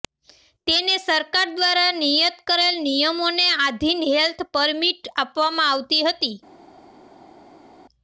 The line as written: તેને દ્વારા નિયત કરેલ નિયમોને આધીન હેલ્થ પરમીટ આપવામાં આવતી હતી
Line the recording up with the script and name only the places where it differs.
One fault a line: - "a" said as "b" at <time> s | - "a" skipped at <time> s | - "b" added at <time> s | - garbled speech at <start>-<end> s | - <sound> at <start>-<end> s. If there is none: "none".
- "સરકાર" added at 1.0 s